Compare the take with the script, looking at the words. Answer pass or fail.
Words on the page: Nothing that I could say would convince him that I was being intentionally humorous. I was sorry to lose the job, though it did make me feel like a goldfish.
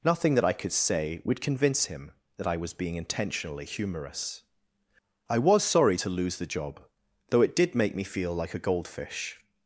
pass